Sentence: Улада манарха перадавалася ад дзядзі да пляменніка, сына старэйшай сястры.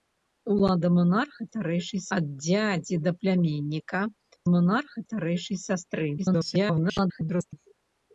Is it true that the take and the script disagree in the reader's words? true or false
true